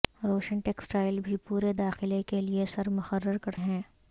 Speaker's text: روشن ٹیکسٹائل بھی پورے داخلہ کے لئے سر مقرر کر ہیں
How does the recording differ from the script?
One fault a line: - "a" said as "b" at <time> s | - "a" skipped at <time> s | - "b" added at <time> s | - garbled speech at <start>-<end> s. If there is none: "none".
none